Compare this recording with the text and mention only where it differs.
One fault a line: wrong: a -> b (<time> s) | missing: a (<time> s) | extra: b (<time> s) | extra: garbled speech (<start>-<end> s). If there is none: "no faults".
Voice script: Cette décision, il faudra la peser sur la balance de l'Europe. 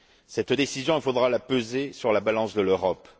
no faults